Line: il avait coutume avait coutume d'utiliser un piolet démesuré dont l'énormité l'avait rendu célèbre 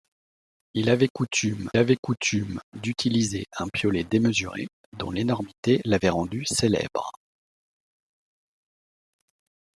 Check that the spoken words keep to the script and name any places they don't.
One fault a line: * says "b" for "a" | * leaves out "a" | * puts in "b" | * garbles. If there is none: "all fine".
all fine